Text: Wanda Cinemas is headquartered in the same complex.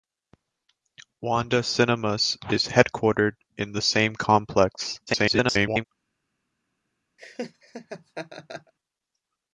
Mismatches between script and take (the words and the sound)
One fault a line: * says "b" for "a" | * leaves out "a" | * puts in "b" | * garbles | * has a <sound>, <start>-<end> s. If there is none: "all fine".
* garbles
* has a laugh, 7.2-8.7 s